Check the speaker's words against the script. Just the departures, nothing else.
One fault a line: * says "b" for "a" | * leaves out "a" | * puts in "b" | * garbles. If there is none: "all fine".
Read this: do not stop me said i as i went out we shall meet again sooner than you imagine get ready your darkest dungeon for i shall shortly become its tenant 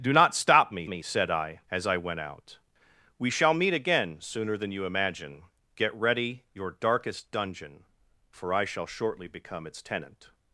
* puts in "me"